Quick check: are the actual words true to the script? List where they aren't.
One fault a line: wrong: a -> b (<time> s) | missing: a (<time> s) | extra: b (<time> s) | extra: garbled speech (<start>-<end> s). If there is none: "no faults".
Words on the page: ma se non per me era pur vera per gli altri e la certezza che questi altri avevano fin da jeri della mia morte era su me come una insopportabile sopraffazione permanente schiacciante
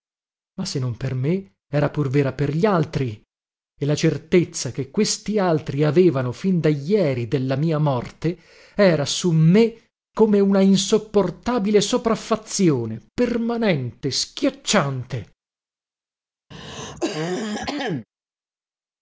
no faults